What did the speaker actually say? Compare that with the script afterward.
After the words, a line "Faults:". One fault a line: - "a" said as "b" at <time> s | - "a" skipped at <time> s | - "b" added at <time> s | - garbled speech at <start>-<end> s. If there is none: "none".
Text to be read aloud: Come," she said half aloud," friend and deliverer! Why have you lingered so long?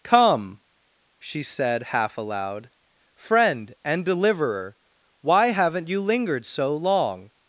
Come," she said half aloud," friend and deliverer! Why haven't you lingered so long?
Faults:
- "have" said as "haven't" at 5.5 s